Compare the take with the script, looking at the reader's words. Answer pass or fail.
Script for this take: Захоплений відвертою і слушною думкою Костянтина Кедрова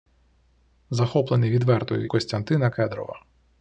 fail